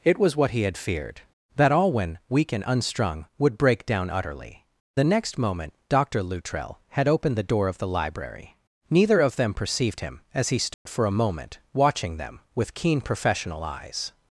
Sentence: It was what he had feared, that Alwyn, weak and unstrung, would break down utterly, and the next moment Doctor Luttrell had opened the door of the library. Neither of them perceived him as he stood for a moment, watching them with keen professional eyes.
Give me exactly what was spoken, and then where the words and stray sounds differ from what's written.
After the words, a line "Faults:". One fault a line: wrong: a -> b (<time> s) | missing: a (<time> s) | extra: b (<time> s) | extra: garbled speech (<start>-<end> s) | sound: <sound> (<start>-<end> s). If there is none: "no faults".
It was what he had feared, that Alwyn, weak and unstrung, would break down utterly, the next moment Doctor Luttrell had opened the door of the library. Neither of them perceived him as he stood for a moment, watching them with keen professional eyes.
Faults:
missing: and (4.7 s)
sound: dropout (10.7-10.9 s)